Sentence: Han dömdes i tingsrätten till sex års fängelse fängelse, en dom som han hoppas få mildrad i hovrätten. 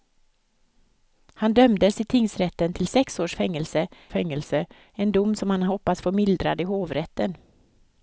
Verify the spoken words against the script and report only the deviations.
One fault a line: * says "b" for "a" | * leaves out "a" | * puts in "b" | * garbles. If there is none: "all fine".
all fine